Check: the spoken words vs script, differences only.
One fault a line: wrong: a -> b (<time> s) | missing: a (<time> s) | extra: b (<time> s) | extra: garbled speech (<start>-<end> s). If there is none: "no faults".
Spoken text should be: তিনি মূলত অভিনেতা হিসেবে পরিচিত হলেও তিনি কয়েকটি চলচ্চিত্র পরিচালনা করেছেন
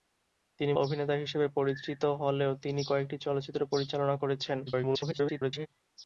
missing: মূলত (0.7 s)
extra: garbled speech (4.7-5.7 s)